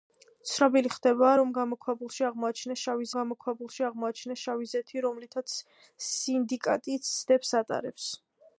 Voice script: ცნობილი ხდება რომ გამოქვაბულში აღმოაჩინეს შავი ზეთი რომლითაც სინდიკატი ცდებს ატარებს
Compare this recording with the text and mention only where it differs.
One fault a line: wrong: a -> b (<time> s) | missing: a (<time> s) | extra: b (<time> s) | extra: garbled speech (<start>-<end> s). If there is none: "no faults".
extra: გამოქვაბულში აღმოაჩინეს შავი (3.2 s)